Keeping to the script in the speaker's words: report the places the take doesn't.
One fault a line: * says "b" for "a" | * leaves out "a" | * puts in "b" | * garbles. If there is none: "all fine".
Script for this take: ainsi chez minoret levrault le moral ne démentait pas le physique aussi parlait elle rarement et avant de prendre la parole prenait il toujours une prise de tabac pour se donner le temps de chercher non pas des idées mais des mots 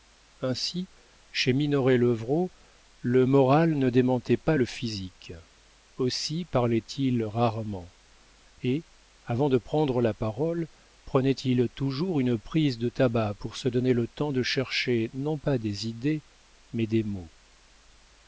* says "il" for "elle"